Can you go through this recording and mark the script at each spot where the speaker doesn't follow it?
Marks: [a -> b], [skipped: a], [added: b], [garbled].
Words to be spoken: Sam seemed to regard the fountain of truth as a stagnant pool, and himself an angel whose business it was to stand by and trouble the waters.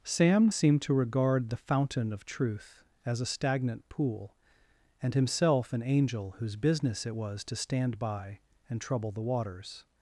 Sam seemed to regard the fountain of truth as a stagnant pool, and himself an angel whose business it was to stand by and trouble the waters.